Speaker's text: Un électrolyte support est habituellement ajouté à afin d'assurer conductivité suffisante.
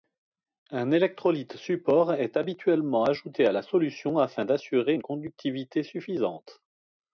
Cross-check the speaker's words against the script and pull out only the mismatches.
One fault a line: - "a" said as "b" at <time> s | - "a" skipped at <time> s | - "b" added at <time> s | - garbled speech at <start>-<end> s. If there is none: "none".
- "la solution" added at 3.5 s
- "une" added at 4.9 s